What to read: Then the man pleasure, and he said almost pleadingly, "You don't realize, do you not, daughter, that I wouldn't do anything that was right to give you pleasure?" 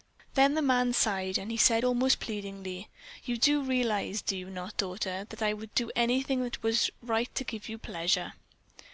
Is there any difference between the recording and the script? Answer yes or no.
yes